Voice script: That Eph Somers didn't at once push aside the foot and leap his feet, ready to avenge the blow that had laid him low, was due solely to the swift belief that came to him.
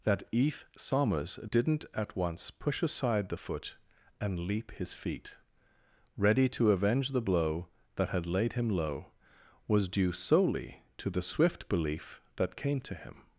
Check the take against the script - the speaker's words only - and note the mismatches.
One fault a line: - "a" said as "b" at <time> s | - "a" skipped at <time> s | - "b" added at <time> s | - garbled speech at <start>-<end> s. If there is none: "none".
none